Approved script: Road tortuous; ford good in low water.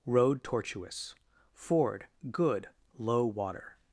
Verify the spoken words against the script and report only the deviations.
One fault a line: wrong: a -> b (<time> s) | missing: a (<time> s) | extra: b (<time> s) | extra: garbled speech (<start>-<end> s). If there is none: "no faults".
missing: in (2.7 s)